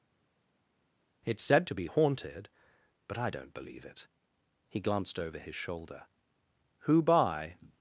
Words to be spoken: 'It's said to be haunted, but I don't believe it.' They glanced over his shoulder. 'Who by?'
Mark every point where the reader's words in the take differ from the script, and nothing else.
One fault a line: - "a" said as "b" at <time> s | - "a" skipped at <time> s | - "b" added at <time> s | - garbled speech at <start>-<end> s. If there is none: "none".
- "They" said as "He" at 4.7 s